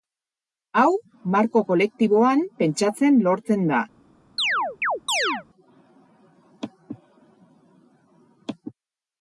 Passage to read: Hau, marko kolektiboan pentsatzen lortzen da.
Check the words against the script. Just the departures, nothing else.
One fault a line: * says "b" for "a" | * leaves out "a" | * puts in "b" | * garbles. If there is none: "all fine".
all fine